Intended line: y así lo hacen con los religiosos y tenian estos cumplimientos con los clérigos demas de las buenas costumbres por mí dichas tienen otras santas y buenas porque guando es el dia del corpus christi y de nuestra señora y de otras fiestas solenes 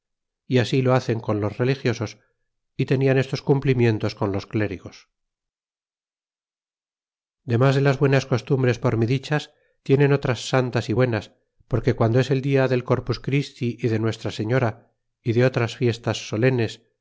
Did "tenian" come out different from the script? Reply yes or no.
no